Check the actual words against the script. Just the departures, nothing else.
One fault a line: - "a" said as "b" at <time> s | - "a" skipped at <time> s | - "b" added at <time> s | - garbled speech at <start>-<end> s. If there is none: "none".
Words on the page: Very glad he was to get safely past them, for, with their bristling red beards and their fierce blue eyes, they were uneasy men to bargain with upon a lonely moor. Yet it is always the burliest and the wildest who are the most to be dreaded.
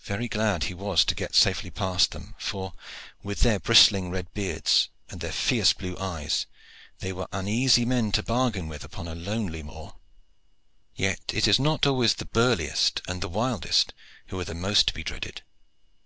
- "not" added at 11.6 s